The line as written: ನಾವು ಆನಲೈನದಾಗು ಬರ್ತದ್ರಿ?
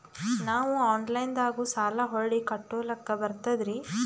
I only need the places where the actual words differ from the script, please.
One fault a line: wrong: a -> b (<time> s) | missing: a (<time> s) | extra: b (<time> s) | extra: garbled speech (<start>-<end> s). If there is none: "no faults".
extra: ಸಾಲ ಹೊಳ್ಳಿ ಕಟ್ಕೋಲಕ್ಕ (1.7 s)